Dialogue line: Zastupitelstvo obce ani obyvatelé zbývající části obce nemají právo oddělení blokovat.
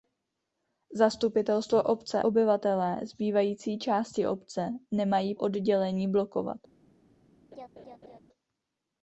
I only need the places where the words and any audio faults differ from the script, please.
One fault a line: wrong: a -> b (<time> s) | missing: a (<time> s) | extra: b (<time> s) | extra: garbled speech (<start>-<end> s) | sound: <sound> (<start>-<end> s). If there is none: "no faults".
missing: ani (2.2 s)
missing: právo (5.3 s)
sound: laugh (7.5-8.2 s)